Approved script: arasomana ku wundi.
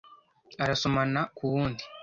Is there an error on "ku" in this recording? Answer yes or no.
no